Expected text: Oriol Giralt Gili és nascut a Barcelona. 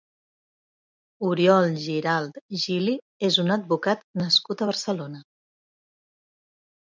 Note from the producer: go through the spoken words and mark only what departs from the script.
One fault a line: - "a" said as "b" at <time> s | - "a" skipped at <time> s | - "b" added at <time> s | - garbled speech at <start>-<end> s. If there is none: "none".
- "un advocat" added at 3.4 s